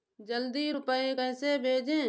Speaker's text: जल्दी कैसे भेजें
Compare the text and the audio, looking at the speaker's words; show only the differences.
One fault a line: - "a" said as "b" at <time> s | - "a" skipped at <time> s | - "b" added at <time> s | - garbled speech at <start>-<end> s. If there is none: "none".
- "रूपए" added at 0.7 s